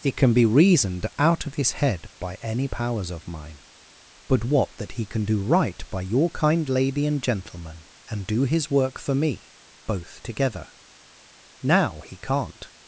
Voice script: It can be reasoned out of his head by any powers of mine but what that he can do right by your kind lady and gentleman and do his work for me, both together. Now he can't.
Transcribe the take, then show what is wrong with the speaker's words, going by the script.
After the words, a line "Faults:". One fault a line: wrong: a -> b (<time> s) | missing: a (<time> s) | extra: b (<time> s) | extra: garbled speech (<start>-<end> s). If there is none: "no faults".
It can be reasoned out of his head by any powers of mine but what that he can do right by your kind lady and gentleman and do his work for me, both together. Now he can't.
Faults:
no faults